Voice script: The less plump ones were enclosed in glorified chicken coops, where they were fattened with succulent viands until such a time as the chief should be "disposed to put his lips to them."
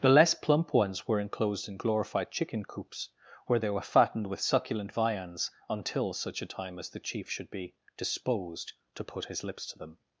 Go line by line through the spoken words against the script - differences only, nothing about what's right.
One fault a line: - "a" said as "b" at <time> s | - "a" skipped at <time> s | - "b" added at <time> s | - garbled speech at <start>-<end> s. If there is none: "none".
none